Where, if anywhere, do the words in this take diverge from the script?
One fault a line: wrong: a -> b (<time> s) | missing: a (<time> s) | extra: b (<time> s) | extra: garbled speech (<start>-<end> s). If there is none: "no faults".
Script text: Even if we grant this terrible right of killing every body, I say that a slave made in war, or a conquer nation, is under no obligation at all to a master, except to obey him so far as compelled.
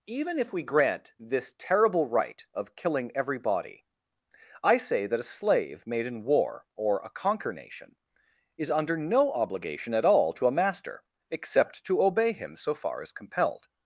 no faults